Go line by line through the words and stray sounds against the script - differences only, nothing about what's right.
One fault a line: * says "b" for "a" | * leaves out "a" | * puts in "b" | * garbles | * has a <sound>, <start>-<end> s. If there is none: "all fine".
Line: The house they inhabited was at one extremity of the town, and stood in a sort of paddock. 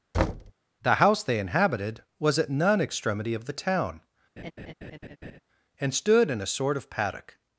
* has a thud, 0.1-0.5 s
* says "none" for "one"
* has a laugh, 4.4-5.4 s